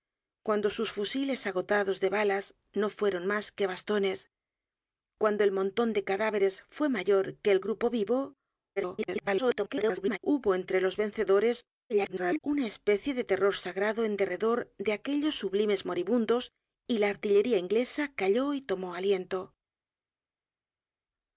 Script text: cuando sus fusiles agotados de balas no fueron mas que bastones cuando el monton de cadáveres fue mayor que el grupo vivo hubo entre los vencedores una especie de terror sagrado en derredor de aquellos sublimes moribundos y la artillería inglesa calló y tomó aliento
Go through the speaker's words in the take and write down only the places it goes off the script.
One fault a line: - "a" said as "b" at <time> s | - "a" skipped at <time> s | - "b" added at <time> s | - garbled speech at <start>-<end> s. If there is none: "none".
- garbled speech at 8.8-10.2 s
- garbled speech at 11.9-12.4 s